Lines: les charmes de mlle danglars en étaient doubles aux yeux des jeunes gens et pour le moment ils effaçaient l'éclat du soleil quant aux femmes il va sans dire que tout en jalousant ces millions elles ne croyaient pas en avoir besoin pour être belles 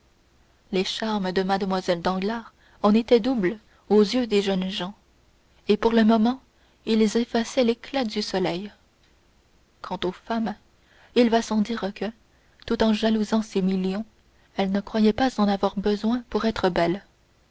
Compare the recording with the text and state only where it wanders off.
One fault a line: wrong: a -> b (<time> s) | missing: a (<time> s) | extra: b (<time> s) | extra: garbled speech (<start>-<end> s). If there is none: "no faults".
no faults